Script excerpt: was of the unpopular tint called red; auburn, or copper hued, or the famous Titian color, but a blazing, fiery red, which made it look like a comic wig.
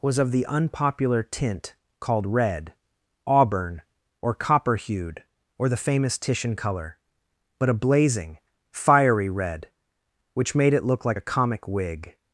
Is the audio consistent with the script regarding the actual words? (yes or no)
yes